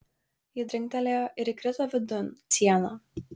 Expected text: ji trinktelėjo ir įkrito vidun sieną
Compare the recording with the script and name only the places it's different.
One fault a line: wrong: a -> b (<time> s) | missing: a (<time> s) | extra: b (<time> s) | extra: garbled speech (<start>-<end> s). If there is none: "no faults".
no faults